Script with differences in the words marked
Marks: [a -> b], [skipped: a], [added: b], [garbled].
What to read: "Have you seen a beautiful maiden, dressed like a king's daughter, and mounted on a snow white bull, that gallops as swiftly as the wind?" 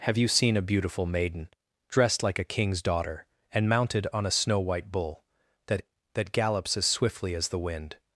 "Have you seen a beautiful maiden, dressed like a king's daughter, and mounted on a snow white bull, that [added: that] gallops as swiftly as the wind?"